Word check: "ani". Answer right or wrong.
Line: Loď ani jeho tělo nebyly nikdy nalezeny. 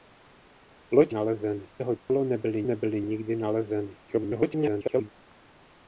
wrong